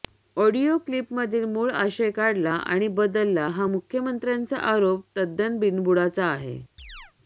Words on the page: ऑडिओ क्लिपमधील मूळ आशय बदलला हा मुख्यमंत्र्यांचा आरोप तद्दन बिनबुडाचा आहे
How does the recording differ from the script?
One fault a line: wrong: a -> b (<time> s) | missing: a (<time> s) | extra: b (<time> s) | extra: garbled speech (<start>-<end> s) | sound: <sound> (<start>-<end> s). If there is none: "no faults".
extra: काढला आणि (2.1 s)
sound: chirp (6.8-7.1 s)